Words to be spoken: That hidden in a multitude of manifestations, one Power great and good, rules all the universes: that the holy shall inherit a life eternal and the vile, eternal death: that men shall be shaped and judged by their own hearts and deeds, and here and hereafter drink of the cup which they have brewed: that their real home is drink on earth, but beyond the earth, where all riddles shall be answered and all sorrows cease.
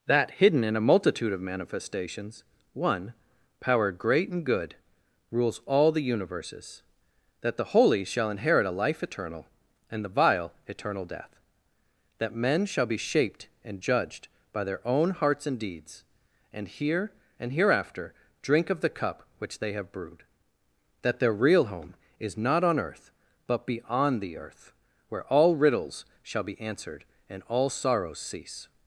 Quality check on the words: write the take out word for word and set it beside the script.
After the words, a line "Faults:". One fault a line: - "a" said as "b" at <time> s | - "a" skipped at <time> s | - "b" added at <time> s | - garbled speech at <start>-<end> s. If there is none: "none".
That hidden in a multitude of manifestations, one Power great and good, rules all the universes: that the holy shall inherit a life eternal and the vile, eternal death: that men shall be shaped and judged by their own hearts and deeds, and here and hereafter drink of the cup which they have brewed: that their real home is not on earth, but beyond the earth, where all riddles shall be answered and all sorrows cease.
Faults:
- "drink" said as "not" at 22.4 s